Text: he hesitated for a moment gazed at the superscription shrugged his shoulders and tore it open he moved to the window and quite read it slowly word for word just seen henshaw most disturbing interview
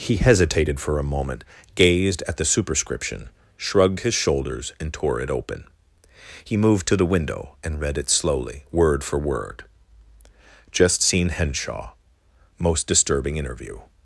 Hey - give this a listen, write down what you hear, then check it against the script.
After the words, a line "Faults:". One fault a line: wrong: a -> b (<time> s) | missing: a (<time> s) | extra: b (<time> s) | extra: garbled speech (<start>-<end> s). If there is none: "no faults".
he hesitated for a moment gazed at the superscription shrugged his shoulders and tore it open he moved to the window and read it slowly word for word just seen henshaw most disturbing interview
Faults:
missing: quite (7.8 s)